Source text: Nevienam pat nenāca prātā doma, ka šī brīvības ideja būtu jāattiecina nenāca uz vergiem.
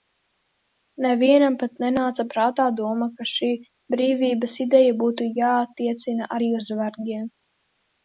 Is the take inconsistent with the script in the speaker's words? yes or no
yes